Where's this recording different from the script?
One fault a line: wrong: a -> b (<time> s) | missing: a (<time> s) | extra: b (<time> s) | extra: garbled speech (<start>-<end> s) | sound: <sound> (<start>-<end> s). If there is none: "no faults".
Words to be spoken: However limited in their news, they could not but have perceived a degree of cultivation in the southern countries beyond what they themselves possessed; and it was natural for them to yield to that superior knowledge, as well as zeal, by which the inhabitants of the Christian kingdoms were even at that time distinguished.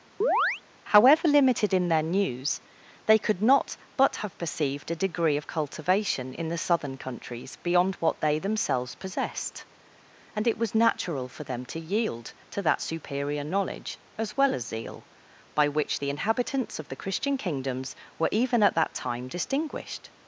sound: chirp (0.2-0.6 s)